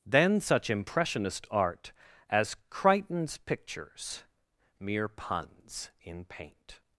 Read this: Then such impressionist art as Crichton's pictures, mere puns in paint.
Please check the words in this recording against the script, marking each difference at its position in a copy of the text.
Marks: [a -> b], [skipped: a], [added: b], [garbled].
Then such impressionist art as Crichton's pictures, mere puns in paint.